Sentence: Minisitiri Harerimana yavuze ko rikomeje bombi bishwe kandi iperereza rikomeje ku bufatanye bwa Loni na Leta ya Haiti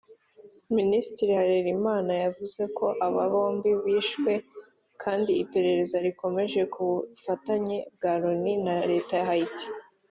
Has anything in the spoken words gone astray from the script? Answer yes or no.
yes